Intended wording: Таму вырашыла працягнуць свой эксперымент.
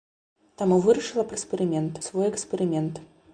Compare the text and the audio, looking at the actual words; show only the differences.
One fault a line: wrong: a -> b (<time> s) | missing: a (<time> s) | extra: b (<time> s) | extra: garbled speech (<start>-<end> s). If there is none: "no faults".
wrong: працягнуць -> эксперымент (1.3 s)